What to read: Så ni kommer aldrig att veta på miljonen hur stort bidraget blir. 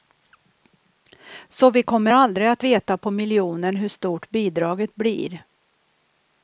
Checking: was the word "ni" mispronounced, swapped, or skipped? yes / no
yes